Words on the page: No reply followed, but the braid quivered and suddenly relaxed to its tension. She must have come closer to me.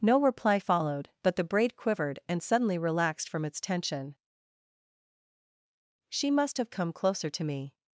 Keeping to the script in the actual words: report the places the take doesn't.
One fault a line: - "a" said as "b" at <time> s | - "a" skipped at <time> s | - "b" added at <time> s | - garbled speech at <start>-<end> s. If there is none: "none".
- "to" said as "from" at 3.3 s